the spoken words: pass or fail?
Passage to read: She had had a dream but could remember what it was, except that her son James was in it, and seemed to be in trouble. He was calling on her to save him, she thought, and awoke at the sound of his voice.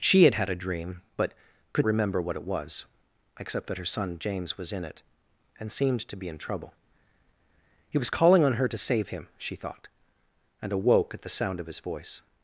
pass